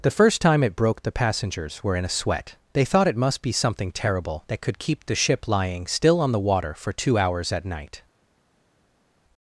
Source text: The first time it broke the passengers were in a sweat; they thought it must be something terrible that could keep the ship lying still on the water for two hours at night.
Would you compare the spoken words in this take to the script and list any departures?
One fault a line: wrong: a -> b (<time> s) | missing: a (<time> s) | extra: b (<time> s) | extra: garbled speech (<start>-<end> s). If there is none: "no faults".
no faults